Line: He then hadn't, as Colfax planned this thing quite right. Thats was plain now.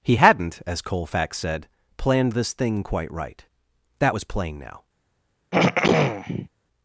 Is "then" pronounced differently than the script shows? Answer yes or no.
yes